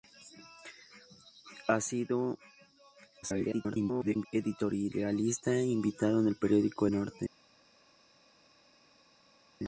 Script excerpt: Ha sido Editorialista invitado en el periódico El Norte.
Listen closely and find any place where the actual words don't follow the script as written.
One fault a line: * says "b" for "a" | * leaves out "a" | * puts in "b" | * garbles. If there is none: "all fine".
* garbles
* leaves out "El"